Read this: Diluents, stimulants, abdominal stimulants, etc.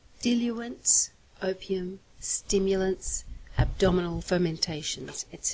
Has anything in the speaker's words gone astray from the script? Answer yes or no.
yes